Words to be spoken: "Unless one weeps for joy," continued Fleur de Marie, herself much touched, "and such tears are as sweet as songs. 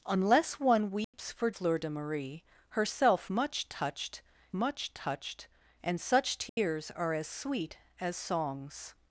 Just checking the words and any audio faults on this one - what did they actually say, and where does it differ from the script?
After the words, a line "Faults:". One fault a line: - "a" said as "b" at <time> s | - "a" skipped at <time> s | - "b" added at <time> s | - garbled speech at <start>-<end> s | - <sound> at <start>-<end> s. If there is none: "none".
"Unless one weeps for Fleur de Marie, herself much touched much touched, "and such tears are as sweet as songs.
Faults:
- dropout at 1.0-1.1 s
- "joy continued" skipped at 1.5 s
- "much touched" added at 4.5 s
- dropout at 6.5-6.6 s